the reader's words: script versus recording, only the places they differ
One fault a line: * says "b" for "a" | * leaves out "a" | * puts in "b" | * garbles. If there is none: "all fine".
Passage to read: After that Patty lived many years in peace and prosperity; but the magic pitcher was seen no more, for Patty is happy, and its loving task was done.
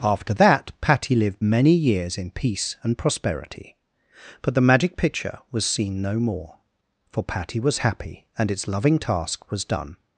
* says "was" for "is"